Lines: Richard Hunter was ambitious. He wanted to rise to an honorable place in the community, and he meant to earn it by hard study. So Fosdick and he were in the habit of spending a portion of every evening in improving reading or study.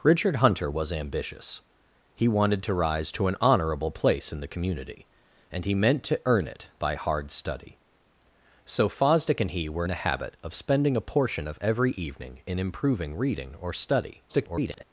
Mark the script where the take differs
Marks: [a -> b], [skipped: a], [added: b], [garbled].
Richard Hunter was ambitious. He wanted to rise to an honorable place in the community, and he meant to earn it by hard study. So Fosdick and he were [skipped: in] the habit of spending a portion of every evening in improving reading or study. [garbled]